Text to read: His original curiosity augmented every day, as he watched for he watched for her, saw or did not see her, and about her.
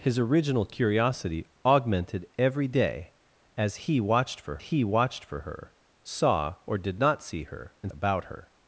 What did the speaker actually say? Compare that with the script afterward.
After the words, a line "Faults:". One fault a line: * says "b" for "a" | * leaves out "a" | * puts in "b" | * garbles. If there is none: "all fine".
His original curiosity augmented every day, as he watched for he watched for her, saw or did not see her, and about her.
Faults:
all fine